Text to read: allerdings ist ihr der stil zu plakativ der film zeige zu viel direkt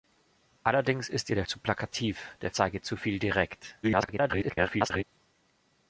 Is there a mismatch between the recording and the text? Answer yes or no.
yes